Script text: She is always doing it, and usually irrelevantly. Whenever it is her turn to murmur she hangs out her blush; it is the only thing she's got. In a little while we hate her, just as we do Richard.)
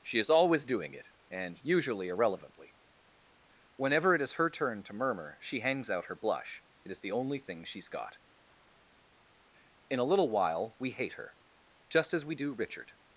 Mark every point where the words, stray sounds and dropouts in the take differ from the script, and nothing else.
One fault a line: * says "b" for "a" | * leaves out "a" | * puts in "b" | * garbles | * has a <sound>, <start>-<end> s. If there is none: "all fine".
all fine